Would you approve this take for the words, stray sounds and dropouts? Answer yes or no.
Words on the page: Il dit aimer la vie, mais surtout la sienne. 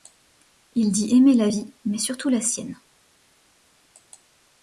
yes